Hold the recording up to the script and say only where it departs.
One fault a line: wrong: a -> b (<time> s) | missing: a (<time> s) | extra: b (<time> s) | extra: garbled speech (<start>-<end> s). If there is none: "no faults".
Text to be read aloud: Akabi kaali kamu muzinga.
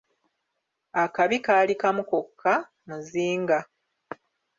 extra: kokka (2.1 s)